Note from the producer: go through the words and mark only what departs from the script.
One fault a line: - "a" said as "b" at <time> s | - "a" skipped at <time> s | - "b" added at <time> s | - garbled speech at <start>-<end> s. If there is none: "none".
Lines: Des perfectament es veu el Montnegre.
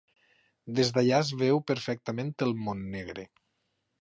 - "perfectament" said as "d'allà" at 0.9 s
- "perfectament" added at 1.7 s